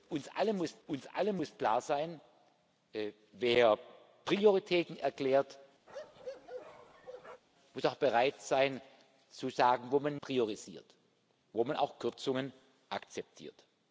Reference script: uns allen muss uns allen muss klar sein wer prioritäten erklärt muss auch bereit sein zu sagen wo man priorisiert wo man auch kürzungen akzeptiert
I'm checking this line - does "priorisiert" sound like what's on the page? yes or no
yes